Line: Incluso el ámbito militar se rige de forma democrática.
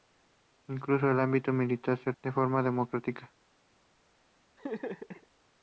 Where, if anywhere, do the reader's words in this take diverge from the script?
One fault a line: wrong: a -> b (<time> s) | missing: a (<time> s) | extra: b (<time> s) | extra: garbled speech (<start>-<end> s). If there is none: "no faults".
missing: rige (2.1 s)